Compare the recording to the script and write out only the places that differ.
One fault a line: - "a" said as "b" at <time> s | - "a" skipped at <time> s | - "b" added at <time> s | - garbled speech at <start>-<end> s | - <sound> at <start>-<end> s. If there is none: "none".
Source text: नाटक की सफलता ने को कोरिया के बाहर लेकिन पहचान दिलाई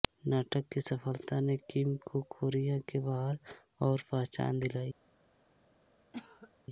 - "किम" added at 1.7 s
- "लेकिन" said as "और" at 3.8 s
- cough at 6.1-6.5 s